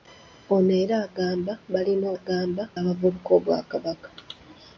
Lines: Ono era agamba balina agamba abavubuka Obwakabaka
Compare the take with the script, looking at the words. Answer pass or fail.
pass